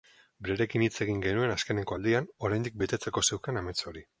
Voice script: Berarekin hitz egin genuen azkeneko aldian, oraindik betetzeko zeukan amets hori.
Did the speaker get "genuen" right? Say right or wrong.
right